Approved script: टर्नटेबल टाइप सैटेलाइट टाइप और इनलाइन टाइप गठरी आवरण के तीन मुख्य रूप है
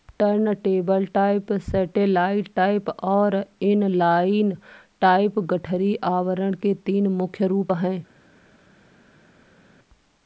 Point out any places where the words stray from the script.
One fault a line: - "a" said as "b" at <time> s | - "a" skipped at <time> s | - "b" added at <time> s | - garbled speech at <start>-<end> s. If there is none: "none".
none